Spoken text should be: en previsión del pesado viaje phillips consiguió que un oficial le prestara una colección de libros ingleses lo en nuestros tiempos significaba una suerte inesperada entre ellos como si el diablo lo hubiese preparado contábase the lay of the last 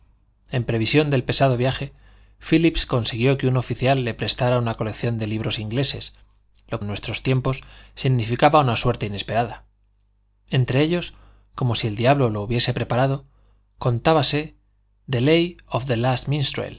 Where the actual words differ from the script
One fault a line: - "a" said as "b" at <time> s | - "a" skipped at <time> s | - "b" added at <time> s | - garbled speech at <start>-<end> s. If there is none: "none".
none